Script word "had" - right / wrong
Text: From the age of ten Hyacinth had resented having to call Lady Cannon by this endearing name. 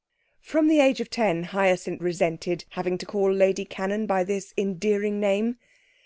wrong